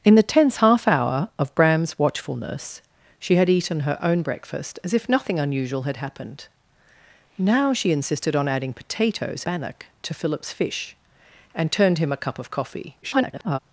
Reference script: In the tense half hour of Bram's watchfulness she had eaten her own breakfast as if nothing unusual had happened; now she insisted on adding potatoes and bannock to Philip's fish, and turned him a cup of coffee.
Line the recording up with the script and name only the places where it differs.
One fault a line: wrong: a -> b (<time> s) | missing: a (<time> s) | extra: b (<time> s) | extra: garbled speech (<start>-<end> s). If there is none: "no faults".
missing: and (9.4 s)
extra: garbled speech (13.0-13.6 s)